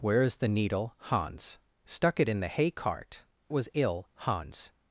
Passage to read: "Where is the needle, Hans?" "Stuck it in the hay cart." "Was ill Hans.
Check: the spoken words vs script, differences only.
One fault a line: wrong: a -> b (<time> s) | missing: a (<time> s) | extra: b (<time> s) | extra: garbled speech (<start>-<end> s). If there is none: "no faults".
no faults